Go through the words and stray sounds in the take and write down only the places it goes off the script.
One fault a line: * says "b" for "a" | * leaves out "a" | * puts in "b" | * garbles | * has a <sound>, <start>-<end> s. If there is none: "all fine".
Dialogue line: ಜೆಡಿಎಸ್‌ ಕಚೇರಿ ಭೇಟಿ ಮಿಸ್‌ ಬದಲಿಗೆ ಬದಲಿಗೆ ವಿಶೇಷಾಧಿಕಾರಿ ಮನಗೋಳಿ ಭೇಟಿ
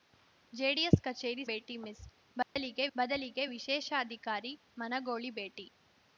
* has a dropout, 2.4-2.6 s